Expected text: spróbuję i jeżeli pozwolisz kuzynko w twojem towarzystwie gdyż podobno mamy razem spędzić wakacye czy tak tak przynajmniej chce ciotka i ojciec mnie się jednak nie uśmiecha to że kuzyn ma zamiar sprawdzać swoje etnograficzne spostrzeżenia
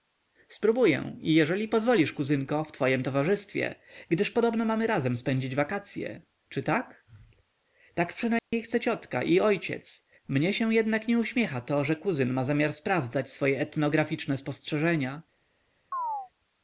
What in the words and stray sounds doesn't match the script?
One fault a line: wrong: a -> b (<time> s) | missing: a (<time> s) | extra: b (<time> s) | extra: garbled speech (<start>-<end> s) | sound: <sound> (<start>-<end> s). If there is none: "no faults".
sound: dropout (8.4-8.5 s)
sound: chirp (15.9-16.3 s)